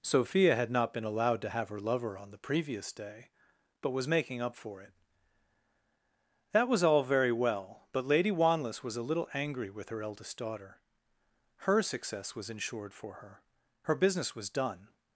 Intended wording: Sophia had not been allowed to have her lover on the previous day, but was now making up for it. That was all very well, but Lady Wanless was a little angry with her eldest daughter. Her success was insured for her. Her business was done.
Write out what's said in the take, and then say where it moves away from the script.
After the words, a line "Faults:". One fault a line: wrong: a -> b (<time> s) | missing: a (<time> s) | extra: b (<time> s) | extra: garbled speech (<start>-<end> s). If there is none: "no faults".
Sophia had not been allowed to have her lover on the previous day, but was making up for it. That was all very well, but Lady Wanless was a little angry with her eldest daughter. Her success was insured for her. Her business was done.
Faults:
missing: now (4.1 s)